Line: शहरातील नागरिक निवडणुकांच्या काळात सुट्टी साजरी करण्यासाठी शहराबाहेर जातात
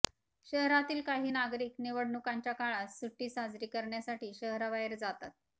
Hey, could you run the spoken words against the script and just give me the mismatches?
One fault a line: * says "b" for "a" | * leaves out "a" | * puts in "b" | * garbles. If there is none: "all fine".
* puts in "काही"